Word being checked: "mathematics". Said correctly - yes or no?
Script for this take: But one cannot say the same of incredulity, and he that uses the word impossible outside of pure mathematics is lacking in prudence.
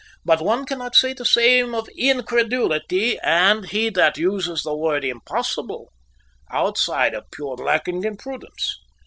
no